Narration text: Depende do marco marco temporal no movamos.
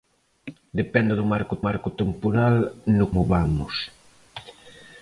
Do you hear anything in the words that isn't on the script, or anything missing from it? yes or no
no